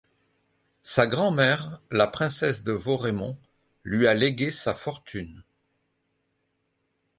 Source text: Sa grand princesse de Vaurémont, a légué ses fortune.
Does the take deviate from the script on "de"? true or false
false